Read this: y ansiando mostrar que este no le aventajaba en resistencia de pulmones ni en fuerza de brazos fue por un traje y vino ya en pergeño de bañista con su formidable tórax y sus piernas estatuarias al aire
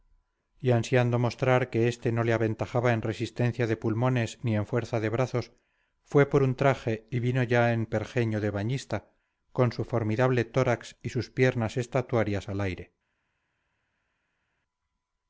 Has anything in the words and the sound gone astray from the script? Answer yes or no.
no